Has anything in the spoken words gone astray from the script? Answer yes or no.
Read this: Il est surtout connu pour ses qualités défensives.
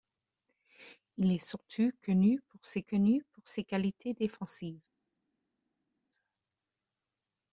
yes